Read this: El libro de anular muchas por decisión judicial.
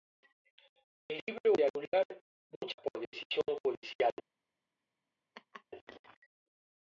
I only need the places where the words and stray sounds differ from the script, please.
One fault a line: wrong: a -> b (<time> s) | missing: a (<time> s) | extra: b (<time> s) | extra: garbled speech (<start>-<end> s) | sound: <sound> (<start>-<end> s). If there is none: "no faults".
sound: laugh (5.3-5.6 s)